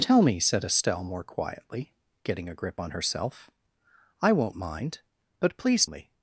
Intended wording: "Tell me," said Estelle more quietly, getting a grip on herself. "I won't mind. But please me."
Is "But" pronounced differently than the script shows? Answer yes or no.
no